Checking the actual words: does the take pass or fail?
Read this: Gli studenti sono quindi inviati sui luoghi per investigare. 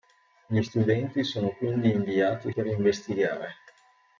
fail